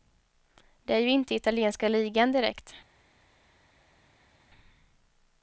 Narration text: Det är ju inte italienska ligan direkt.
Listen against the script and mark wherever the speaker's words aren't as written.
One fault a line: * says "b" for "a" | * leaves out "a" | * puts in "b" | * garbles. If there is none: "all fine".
all fine